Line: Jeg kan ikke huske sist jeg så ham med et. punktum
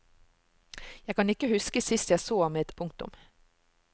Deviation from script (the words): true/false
false